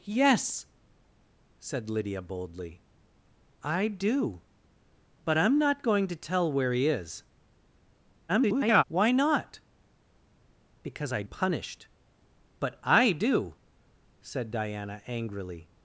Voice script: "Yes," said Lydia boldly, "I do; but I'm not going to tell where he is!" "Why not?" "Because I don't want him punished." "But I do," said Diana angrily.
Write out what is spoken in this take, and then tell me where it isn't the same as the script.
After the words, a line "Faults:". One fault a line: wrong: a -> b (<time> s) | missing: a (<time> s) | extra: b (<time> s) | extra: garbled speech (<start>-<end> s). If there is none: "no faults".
"Yes," said Lydia boldly, "I do; but I'm not going to tell where he is!" [garbled] "Why not?" "Because I punished." "But I do," said Diana angrily.
Faults:
extra: garbled speech (8.3-8.8 s)
missing: don't want him (11.2 s)